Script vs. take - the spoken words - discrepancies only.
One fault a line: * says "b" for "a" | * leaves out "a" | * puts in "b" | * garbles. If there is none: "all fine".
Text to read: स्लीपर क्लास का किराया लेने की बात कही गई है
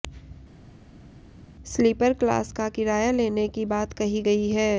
all fine